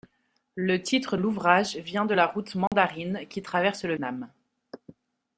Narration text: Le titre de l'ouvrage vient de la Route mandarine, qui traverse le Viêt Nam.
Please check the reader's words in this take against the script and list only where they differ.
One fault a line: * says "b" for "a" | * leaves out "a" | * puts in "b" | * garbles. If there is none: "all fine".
* leaves out "de"
* leaves out "Viêt"